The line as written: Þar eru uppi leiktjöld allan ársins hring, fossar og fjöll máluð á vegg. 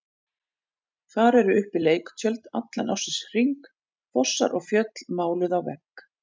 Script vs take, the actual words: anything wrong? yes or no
no